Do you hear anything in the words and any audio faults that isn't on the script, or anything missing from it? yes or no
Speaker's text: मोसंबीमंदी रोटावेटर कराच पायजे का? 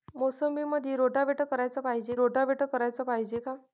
yes